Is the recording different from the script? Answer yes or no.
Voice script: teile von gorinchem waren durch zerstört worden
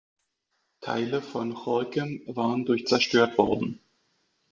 no